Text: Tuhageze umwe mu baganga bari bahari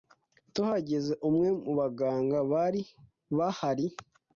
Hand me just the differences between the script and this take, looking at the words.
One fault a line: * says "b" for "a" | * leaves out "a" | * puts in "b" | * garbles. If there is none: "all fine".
all fine